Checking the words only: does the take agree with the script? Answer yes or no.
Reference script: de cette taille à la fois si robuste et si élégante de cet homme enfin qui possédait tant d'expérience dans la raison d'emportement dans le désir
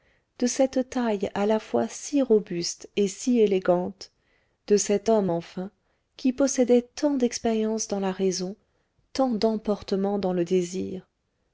no